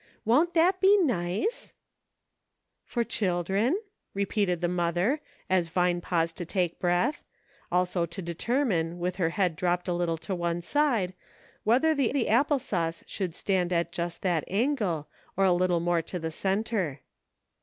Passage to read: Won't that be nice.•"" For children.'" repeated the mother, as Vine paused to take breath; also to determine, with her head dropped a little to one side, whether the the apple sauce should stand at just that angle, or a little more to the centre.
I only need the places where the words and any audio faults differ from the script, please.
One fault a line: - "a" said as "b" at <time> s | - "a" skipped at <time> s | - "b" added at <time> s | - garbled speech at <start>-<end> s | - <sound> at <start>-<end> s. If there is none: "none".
none